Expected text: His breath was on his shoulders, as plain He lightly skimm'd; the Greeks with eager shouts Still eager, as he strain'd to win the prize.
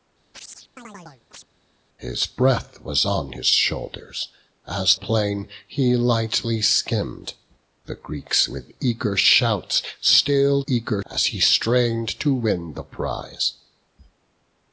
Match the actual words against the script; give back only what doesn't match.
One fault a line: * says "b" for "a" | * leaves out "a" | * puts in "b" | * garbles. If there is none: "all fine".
all fine